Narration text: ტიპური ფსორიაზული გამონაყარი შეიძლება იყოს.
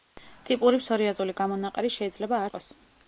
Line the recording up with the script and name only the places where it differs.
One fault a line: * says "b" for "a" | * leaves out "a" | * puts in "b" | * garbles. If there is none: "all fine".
all fine